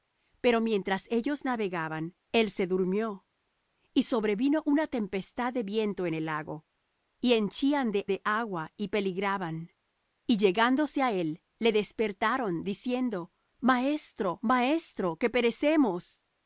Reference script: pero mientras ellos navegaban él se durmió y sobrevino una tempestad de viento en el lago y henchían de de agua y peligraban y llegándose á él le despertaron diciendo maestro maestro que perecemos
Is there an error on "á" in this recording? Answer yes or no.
no